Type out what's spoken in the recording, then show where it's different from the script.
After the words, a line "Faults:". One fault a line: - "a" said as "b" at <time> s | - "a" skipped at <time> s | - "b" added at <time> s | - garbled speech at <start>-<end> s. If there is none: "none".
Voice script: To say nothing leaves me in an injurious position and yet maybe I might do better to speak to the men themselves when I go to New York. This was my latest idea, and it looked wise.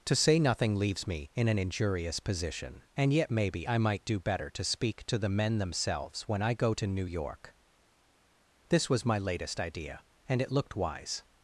To say nothing leaves me in an injurious position and yet maybe I might do better to speak to the men themselves when I go to New York. This was my latest idea, and it looked wise.
Faults:
none